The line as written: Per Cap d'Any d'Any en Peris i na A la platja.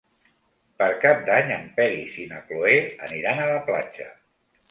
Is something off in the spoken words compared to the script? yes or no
yes